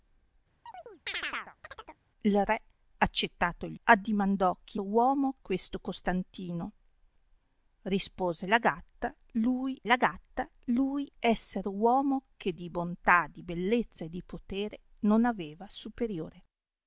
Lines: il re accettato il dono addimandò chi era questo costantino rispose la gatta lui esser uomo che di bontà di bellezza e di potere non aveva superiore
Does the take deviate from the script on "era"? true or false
true